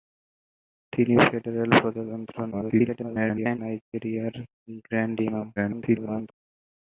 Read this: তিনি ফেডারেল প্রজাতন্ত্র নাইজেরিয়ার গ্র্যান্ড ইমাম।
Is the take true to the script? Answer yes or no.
no